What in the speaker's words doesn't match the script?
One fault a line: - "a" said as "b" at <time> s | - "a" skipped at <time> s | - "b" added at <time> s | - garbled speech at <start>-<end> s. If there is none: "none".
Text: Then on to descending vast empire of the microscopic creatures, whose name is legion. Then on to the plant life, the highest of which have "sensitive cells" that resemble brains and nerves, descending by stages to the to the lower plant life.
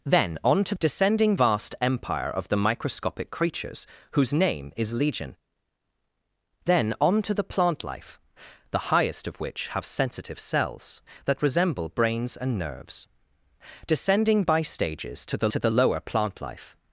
none